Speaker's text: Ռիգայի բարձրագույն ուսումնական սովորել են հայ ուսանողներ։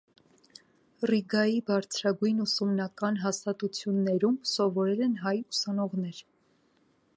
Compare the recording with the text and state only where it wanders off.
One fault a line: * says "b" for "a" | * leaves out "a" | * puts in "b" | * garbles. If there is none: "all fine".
* puts in "հաստատություններում"